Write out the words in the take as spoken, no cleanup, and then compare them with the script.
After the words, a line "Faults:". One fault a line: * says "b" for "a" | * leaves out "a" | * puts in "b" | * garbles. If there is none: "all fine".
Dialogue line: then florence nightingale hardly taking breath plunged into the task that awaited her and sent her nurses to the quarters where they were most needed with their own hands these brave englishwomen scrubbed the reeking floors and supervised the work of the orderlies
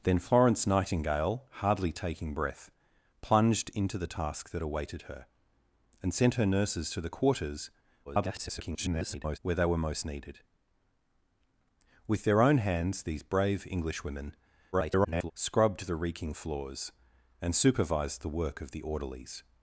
then florence nightingale hardly taking breath plunged into the task that awaited her and sent her nurses to the quarters [garbled] where they were most needed with their own hands these brave englishwomen [garbled] scrubbed the reeking floors and supervised the work of the orderlies
Faults:
* garbles
* garbles